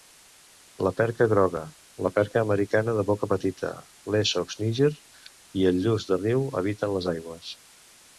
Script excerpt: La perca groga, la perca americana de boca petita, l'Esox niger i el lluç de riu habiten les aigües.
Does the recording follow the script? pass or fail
pass